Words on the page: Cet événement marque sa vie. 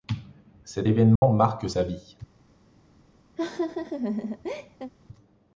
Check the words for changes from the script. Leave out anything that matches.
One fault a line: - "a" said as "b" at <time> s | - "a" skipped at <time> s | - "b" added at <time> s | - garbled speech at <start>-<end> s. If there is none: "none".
none